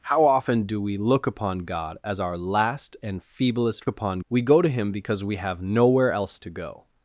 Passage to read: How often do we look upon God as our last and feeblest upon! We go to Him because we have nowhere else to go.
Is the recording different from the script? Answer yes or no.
no